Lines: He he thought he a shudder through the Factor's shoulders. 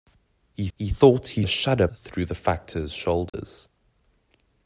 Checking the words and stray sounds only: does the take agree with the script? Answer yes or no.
no